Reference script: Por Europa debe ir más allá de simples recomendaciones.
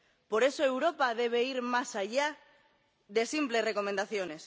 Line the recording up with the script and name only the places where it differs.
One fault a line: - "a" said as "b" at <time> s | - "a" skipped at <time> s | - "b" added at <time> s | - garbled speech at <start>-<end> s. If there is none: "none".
- "eso" added at 0.4 s